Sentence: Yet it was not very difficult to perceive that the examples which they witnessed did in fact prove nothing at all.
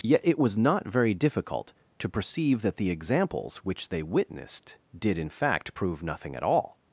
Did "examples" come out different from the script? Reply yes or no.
no